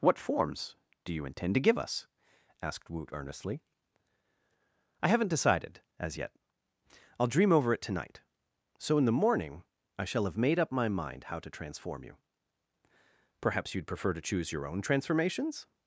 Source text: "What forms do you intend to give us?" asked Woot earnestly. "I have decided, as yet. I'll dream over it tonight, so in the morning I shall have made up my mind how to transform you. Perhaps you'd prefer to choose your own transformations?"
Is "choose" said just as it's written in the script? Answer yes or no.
yes